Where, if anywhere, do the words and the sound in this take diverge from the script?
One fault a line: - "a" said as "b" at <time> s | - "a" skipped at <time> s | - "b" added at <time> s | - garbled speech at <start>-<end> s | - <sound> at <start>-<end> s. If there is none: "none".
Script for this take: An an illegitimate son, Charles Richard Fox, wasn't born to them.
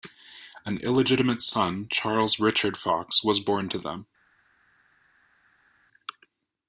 - "an" skipped at 0.8 s
- "wasn't" said as "was" at 3.2 s